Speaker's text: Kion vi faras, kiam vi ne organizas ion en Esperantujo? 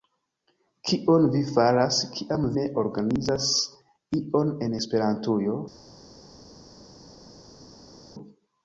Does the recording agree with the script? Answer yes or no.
no